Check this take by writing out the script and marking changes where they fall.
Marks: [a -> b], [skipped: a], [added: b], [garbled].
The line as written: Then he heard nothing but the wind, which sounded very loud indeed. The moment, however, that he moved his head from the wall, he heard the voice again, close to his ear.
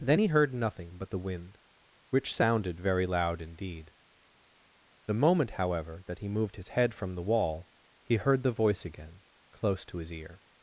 Then he heard nothing but the wind, which sounded very loud indeed. The moment, however, that he moved his head from the wall, he heard the voice again, close to his ear.